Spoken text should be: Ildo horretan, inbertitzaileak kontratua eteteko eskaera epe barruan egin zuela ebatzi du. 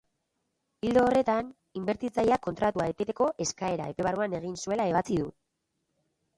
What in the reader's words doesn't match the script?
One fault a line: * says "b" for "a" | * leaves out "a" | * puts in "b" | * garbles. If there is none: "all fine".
all fine